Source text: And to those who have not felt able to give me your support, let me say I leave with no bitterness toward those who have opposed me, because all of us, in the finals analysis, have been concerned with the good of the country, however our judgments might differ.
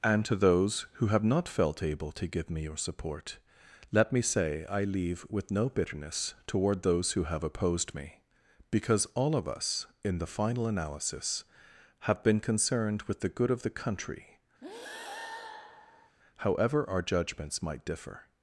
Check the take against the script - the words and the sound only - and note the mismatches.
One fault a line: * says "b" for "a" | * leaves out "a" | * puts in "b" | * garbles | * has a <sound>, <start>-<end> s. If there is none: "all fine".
* says "final" for "finals"
* has a breath, 14.6-16.2 s